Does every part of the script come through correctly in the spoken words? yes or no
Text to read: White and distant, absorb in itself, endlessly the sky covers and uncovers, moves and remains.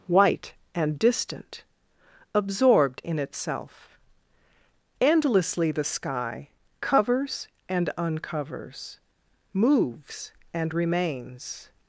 no